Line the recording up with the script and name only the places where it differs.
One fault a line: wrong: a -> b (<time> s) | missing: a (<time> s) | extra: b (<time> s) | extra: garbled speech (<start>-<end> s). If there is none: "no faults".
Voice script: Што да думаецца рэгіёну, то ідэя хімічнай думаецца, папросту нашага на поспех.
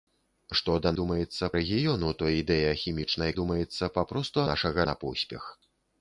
no faults